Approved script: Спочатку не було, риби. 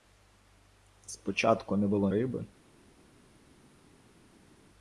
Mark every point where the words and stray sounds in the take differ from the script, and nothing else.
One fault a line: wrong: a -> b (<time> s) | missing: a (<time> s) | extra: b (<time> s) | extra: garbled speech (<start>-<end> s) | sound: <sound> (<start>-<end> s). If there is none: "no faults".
no faults